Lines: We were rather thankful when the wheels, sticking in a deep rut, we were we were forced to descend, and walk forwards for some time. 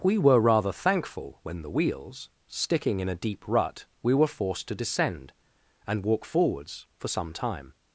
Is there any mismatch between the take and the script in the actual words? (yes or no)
yes